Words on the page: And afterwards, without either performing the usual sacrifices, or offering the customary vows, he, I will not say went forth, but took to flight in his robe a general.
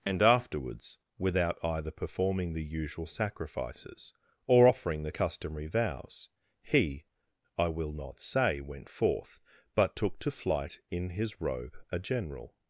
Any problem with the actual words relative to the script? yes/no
no